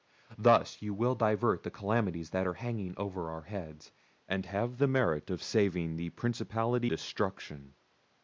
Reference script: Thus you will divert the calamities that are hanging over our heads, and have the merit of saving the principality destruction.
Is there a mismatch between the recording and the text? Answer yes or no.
no